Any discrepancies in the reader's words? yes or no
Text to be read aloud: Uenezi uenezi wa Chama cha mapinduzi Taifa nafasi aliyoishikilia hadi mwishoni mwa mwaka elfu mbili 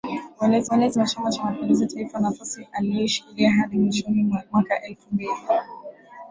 no